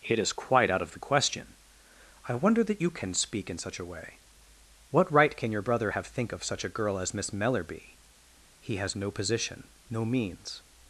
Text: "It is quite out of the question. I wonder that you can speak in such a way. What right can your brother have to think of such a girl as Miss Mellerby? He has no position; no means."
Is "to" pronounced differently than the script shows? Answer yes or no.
yes